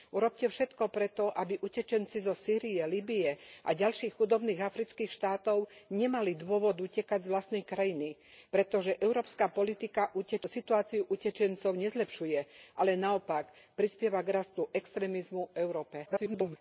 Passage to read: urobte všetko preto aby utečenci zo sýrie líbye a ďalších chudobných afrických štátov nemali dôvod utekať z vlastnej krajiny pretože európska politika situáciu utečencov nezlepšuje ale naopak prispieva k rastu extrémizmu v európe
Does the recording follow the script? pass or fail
fail